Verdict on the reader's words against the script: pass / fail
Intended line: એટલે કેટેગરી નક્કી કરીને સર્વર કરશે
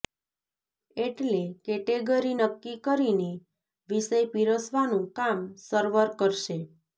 fail